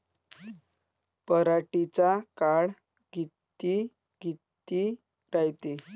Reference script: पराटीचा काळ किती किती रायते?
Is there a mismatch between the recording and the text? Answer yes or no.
no